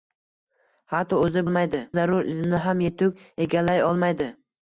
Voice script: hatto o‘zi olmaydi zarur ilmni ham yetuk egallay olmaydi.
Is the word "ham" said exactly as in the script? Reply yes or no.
yes